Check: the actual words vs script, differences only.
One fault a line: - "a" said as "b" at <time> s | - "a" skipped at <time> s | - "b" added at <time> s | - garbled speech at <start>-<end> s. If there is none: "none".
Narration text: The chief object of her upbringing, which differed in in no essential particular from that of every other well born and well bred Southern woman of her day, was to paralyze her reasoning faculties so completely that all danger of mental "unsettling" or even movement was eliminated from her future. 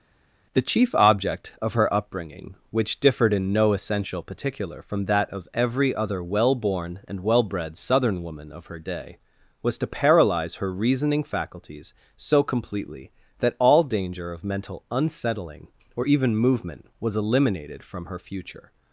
- "in" skipped at 3.5 s